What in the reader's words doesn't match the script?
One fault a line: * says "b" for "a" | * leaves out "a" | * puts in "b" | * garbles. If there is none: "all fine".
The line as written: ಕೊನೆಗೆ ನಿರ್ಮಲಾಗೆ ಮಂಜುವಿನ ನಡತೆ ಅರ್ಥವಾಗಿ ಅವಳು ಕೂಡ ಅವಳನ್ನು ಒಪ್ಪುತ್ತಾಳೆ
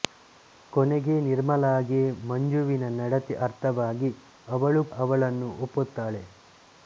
* leaves out "ಕೂಡ"